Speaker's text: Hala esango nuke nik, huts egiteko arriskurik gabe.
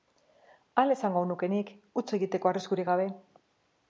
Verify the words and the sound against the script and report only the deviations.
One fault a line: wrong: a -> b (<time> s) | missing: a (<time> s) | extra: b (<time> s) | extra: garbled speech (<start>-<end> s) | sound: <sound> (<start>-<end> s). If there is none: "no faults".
no faults